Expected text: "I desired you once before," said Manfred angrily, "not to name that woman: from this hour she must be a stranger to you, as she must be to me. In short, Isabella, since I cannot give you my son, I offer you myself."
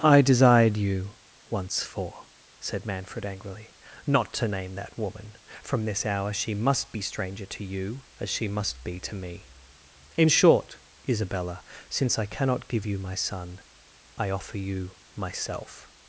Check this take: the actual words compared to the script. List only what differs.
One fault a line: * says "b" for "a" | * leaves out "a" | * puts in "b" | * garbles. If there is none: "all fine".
* says "for" for "before"
* leaves out "a"